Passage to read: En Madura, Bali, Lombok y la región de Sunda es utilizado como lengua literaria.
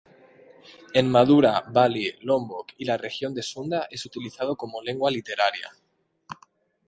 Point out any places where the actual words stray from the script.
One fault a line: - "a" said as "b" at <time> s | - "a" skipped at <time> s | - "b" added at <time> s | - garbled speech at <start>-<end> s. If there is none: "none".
none